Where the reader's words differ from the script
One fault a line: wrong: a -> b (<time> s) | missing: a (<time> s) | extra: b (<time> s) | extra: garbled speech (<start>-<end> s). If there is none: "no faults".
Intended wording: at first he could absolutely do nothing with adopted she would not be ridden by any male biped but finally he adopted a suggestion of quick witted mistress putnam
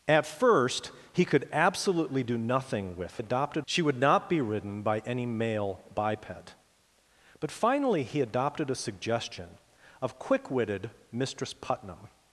no faults